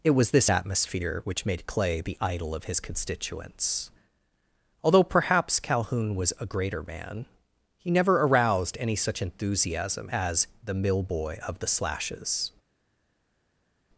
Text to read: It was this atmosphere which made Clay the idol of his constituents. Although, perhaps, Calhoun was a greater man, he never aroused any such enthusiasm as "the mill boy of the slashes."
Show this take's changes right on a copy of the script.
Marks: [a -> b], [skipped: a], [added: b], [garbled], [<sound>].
It was this atmosphere which made Clay the idol of his constituents. Although, perhaps, Calhoun was a greater man, he never aroused any such enthusiasm as "the mill boy of the slashes."